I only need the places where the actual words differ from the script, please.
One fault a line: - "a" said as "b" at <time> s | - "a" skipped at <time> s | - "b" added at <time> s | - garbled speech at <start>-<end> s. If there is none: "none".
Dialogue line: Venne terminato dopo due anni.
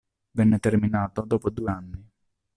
none